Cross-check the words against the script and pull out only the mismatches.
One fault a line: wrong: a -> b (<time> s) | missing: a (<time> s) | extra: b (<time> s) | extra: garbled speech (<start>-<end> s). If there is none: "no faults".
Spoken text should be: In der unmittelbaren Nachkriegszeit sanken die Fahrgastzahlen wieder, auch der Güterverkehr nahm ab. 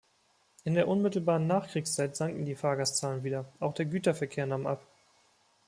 no faults